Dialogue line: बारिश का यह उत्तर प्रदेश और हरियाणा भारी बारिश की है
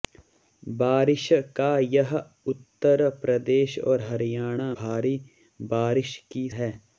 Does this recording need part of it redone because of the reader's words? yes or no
no